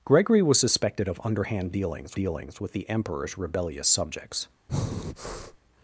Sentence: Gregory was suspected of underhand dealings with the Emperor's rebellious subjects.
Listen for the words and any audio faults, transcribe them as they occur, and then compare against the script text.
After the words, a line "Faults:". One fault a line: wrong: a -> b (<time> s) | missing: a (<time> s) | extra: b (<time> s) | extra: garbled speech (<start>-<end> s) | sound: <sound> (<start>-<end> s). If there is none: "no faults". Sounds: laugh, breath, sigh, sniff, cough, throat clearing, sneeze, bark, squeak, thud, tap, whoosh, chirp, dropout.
Gregory was suspected of underhand dealings dealings with the Emperor's rebellious subjects.
Faults:
extra: dealings (2.1 s)
sound: breath (4.7-5.6 s)